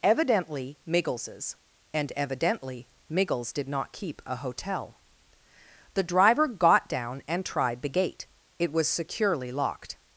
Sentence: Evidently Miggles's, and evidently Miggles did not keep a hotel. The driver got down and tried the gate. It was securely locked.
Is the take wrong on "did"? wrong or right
right